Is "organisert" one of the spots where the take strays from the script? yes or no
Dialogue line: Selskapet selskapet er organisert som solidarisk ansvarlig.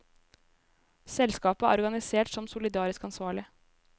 no